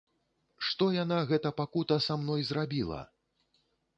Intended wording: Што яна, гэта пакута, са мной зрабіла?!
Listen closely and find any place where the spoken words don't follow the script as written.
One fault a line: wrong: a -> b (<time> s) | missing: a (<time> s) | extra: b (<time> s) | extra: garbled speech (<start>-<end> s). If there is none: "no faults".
no faults